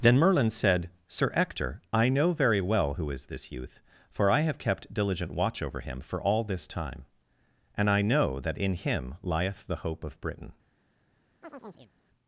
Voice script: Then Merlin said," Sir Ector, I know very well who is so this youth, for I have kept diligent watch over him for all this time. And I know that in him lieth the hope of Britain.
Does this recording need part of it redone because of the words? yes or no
yes